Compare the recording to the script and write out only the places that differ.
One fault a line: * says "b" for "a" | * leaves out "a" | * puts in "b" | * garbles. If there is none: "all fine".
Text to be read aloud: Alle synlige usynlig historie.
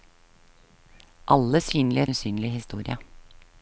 all fine